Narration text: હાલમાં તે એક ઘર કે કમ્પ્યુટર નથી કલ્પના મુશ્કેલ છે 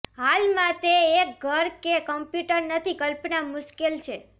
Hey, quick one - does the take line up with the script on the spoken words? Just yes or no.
yes